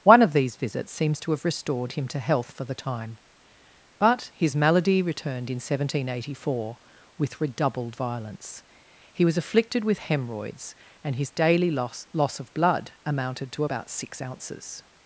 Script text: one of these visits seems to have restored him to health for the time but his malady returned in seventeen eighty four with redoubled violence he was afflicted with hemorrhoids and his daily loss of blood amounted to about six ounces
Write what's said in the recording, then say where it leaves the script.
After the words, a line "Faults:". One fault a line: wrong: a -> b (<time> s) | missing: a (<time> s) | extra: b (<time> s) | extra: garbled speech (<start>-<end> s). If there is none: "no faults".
one of these visits seems to have restored him to health for the time but his malady returned in seventeen eighty four with redoubled violence he was afflicted with hemorrhoids and his daily loss loss of blood amounted to about six ounces
Faults:
extra: loss (12.1 s)